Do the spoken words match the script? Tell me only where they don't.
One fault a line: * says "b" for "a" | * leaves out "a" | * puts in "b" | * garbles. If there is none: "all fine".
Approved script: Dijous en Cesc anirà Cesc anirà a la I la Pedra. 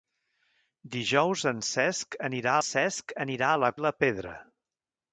all fine